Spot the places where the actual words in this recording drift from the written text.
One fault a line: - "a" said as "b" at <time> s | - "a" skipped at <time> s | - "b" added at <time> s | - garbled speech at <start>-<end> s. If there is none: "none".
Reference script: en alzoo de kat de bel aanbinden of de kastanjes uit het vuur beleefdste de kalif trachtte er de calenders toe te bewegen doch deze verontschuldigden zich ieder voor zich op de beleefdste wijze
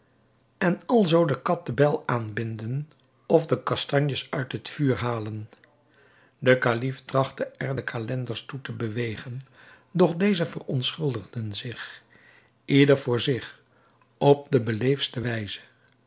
- "beleefdste" said as "halen" at 5.0 s